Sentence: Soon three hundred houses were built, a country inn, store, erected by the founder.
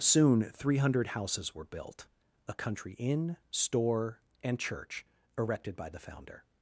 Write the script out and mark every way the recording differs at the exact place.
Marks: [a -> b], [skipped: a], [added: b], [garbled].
Soon three hundred houses were built, a country inn, store, [added: and church] erected by the founder.